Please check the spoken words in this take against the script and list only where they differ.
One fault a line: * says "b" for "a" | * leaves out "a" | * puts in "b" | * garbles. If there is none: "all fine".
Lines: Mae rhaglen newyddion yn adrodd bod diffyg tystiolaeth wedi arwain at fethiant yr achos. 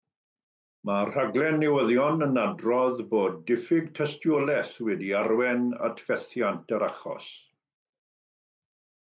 all fine